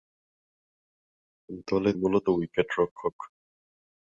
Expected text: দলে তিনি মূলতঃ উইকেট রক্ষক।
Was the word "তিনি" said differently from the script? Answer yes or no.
yes